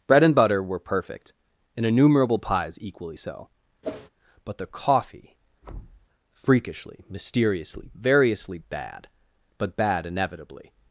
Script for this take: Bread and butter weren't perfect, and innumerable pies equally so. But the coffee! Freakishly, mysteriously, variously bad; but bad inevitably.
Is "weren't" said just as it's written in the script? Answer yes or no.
no